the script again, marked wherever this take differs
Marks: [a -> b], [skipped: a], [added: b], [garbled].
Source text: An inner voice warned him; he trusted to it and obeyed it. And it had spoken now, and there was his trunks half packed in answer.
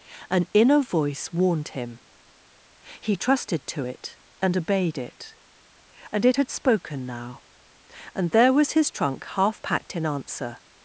An inner voice warned him; he trusted to it and obeyed it. And it had spoken now, and there was his [trunks -> trunk] half packed in answer.